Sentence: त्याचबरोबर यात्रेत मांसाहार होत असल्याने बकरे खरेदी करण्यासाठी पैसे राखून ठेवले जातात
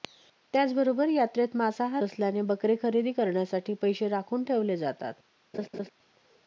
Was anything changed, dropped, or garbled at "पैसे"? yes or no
no